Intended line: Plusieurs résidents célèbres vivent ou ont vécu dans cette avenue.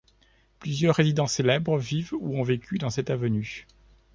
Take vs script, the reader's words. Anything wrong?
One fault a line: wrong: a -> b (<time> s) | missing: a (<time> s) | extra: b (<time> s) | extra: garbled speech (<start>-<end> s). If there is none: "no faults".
no faults